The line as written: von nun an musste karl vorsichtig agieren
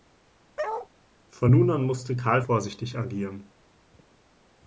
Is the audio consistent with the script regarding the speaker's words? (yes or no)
yes